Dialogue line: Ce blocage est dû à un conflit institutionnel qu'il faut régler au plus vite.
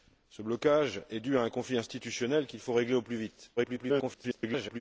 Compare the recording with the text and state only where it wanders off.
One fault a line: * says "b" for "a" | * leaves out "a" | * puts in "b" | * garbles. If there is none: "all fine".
* garbles